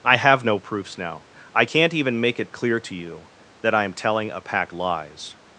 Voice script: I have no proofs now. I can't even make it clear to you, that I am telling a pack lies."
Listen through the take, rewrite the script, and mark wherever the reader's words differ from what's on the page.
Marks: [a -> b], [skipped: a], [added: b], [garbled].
I have no proofs now. I can't even make it clear to you, that I am telling a pack lies."